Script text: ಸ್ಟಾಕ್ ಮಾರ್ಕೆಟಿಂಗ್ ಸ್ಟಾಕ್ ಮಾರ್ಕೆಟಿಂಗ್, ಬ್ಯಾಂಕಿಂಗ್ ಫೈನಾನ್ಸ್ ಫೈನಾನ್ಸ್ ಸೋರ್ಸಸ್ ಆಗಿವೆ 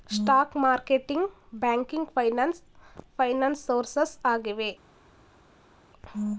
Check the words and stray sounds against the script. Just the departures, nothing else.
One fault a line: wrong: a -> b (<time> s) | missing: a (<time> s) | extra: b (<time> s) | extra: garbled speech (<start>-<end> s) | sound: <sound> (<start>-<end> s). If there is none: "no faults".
missing: ಸ್ಟಾಕ್ ಮಾರ್ಕೆಟಿಂಗ್ (1.3 s)